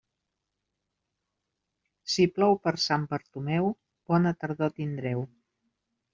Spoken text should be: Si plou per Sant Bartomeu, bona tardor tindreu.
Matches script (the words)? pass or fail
pass